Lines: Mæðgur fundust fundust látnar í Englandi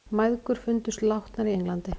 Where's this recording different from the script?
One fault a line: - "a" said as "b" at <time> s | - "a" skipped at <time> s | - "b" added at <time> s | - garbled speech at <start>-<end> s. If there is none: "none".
- "fundust" skipped at 1.1 s